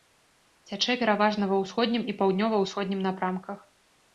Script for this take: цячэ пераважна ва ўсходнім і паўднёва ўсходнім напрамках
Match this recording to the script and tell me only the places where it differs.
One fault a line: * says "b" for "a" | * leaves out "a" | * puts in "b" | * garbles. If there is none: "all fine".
all fine